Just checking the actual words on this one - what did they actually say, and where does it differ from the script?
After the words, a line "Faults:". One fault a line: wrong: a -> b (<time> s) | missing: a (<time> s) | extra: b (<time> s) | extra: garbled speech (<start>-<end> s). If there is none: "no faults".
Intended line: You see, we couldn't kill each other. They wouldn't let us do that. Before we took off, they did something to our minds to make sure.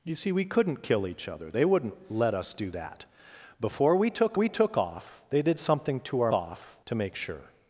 You see, we couldn't kill each other. They wouldn't let us do that. Before we took we took off, they did something to our off to make sure.
Faults:
extra: we took (4.3 s)
wrong: minds -> off (6.3 s)